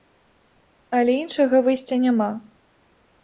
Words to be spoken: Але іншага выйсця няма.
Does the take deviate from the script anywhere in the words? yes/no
no